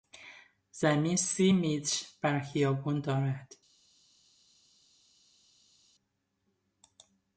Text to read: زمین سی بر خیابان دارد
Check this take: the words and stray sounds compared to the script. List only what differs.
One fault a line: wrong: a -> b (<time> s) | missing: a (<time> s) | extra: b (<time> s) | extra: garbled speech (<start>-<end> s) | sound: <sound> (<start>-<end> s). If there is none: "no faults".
extra: متر (1.5 s)